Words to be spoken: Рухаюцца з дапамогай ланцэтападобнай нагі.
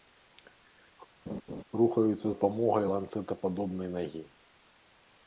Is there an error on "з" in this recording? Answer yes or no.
yes